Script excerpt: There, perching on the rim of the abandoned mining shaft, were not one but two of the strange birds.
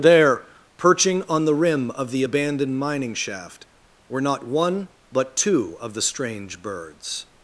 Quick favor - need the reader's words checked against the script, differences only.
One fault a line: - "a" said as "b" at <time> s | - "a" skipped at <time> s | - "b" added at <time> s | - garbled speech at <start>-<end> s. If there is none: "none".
none